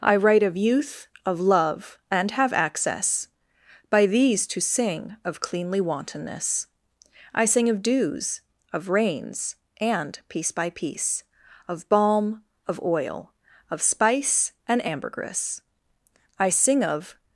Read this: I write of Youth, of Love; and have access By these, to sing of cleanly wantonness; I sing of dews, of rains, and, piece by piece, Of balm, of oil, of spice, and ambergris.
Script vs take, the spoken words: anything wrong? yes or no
yes